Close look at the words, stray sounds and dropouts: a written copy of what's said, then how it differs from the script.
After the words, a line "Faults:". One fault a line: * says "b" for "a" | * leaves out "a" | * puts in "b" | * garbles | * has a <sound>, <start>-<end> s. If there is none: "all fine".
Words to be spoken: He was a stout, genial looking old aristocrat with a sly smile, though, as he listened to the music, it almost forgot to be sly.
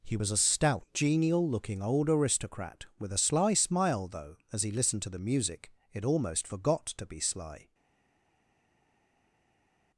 He was a stout, genial looking old aristocrat with a sly smile, though, as he listened to the music, it almost forgot to be sly.
Faults:
all fine